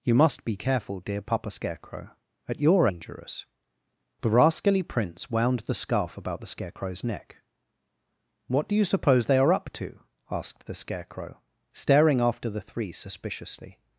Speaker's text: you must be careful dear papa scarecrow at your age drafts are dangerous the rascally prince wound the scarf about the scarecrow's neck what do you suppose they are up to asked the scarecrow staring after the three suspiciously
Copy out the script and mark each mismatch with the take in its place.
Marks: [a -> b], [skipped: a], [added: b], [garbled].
you must be careful dear papa scarecrow at your [skipped: age drafts are] dangerous the rascally prince wound the scarf about the scarecrow's neck what do you suppose they are up to asked the scarecrow staring after the three suspiciously